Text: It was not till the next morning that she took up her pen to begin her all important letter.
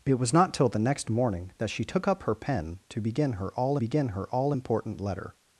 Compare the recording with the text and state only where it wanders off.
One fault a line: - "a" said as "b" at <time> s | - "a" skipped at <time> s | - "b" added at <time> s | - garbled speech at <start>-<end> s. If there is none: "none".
- "begin her all" added at 3.7 s